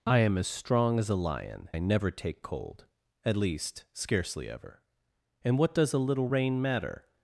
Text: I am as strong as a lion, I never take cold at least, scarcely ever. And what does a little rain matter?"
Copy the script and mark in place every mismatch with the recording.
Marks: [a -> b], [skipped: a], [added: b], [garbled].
I am as strong as a lion, I never take cold at least, scarcely ever. And what does a little rain matter?"